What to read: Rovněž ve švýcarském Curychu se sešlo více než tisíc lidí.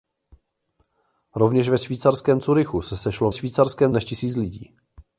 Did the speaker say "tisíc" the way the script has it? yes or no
yes